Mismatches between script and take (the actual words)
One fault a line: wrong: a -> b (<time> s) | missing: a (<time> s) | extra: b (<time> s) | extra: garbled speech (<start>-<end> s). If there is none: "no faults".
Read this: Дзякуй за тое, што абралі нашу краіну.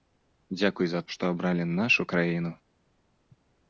missing: тое (1.0 s)